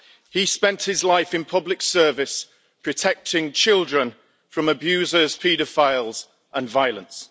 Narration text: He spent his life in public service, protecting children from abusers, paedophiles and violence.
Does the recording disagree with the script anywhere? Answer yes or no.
no